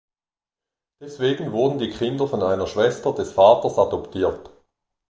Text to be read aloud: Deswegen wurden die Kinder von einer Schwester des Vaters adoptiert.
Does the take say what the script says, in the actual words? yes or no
yes